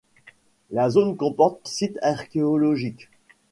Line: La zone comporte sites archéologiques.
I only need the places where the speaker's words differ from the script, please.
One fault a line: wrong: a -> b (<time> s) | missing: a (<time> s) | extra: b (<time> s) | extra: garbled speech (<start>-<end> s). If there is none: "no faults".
no faults